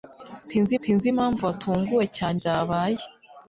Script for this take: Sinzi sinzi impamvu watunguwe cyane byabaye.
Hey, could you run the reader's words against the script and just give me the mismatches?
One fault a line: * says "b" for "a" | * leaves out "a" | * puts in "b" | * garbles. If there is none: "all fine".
all fine